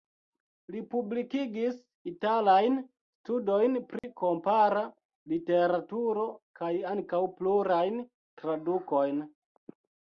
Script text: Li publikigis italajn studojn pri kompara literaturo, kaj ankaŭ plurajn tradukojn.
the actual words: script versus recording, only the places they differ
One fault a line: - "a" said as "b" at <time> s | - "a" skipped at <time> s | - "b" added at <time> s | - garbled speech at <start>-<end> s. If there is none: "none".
none